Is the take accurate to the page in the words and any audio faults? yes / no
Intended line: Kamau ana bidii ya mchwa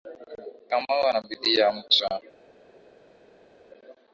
yes